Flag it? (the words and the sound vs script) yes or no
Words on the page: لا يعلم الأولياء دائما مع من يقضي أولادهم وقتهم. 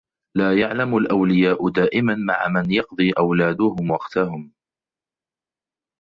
no